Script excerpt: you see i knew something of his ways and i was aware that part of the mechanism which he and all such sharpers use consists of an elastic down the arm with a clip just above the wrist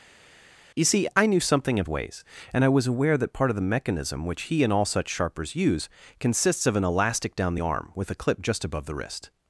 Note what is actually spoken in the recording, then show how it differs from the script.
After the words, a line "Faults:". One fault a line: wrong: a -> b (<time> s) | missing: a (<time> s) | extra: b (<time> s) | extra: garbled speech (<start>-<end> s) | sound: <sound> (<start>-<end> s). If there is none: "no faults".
you see i knew something of ways and i was aware that part of the mechanism which he and all such sharpers use consists of an elastic down arm with a clip just above the wrist
Faults:
missing: his (1.9 s)
missing: the (7.6 s)